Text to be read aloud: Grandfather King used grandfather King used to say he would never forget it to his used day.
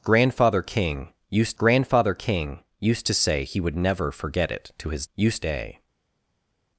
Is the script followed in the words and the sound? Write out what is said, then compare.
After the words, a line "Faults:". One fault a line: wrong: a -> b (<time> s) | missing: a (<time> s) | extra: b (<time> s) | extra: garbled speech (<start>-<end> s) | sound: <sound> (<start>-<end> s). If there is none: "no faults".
Grandfather King used grandfather King used to say he would never forget it to his used day.
Faults:
no faults